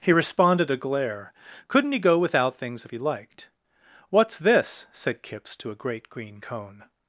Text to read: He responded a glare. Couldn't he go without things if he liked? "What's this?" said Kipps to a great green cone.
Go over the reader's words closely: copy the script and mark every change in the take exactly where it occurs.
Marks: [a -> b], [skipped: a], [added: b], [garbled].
He responded a glare. Couldn't he go without things if he liked? "What's this?" said Kipps to a great green cone.